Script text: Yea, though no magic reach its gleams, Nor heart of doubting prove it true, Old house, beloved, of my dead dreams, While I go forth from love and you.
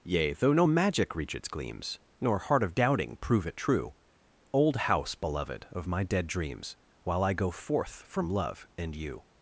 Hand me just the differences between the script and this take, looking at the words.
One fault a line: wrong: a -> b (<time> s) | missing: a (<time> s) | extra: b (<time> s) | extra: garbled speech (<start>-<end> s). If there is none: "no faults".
no faults